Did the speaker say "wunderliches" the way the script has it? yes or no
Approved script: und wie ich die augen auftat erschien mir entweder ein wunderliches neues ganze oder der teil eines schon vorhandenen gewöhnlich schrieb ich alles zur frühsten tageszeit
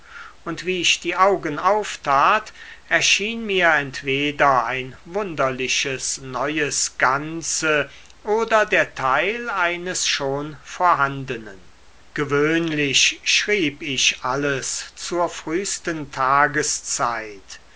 yes